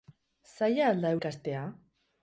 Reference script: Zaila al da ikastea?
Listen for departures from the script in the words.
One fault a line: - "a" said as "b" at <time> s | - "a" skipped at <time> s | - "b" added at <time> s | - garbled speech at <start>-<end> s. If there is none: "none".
none